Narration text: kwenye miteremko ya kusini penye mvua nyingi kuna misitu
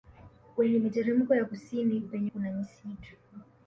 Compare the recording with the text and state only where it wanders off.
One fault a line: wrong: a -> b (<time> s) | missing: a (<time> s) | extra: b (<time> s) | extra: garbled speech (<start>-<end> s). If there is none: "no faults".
missing: mvua nyingi (2.3 s)